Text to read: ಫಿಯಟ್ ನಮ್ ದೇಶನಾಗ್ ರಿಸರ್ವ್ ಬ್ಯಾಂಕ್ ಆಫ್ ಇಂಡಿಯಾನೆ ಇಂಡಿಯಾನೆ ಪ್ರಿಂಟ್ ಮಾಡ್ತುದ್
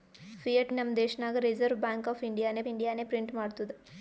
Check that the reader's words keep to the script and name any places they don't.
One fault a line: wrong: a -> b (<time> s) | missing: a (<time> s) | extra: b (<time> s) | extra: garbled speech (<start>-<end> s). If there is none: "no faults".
no faults